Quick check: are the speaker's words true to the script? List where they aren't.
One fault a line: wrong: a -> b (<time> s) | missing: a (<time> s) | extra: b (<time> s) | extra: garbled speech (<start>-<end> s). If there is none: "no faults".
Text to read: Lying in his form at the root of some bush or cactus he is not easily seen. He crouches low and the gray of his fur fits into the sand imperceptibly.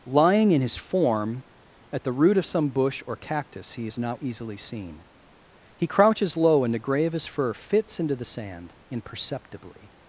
no faults